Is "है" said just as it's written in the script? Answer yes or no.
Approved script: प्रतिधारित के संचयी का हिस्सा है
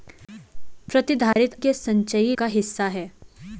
yes